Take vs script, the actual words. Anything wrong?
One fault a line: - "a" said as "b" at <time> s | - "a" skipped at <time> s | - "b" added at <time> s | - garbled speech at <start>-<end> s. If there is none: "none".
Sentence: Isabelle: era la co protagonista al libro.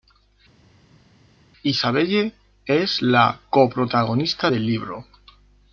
- "era" said as "es" at 2.7 s
- "al" said as "del" at 4.5 s